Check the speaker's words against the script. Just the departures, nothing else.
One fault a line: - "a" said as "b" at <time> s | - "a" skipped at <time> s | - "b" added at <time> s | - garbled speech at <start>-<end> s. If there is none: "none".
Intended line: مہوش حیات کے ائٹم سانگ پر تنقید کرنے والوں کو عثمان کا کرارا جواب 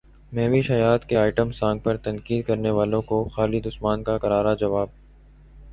- "خالد" added at 3.3 s